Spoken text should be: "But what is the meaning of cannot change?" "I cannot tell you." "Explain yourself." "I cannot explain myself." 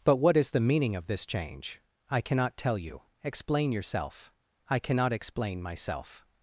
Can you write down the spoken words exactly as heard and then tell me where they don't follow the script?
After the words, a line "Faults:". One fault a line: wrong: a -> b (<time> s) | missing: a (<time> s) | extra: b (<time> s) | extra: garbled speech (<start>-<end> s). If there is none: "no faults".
"But what is the meaning of this change?" "I cannot tell you." "Explain yourself." "I cannot explain myself."
Faults:
wrong: cannot -> this (1.1 s)